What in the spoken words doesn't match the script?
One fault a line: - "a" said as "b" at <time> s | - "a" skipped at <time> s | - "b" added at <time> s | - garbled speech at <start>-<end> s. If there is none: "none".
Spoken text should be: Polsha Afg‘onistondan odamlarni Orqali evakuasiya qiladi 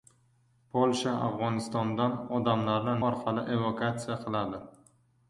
none